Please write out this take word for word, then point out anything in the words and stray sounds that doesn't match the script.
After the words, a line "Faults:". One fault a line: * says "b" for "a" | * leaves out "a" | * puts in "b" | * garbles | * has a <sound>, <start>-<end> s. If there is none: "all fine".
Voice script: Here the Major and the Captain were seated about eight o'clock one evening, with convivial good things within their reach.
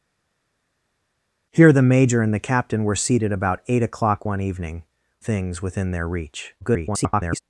Here the Major and the Captain were seated about eight o'clock one evening, things within their reach. [garbled]
Faults:
* leaves out "with convivial good"
* garbles